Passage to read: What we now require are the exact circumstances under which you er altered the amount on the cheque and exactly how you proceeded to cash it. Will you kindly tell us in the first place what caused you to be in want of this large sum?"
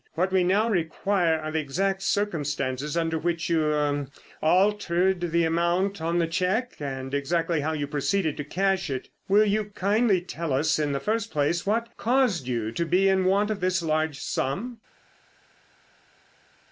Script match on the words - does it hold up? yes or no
yes